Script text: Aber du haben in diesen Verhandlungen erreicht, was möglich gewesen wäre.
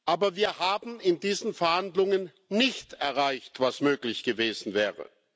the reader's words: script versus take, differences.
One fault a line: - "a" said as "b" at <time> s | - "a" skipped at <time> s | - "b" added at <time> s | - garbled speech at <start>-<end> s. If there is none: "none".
- "du" said as "wir" at 0.3 s
- "nicht" added at 2.5 s